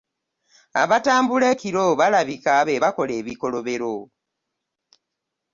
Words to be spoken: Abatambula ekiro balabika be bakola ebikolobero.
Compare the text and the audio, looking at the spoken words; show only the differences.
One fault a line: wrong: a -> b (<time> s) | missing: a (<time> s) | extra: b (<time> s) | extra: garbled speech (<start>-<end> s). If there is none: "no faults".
no faults